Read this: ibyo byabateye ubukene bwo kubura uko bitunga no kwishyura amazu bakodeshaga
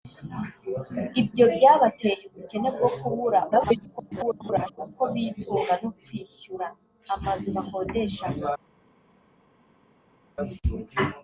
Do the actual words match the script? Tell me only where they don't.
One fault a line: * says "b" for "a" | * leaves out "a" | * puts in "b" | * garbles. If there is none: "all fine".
* garbles